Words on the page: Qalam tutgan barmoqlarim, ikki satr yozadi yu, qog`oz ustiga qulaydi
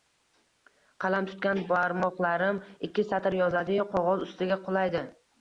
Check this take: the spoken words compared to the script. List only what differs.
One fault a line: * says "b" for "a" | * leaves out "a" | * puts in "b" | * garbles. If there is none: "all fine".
all fine